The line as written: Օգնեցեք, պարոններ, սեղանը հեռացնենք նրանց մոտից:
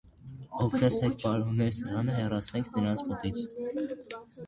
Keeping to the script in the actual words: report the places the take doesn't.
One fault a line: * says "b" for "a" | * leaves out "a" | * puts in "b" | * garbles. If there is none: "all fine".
all fine